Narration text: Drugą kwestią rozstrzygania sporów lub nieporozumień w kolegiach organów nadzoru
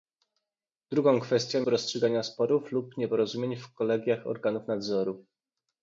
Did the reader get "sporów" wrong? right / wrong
right